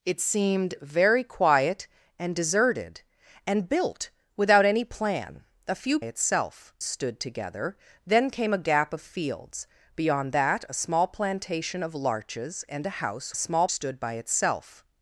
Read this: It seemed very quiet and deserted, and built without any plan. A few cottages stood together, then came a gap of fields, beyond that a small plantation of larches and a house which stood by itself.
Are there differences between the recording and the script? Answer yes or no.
yes